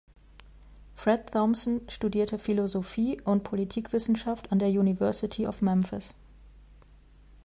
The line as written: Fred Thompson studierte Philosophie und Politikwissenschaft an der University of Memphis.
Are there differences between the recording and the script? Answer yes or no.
no